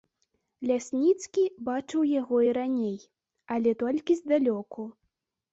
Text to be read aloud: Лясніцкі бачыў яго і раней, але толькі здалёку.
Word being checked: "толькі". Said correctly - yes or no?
yes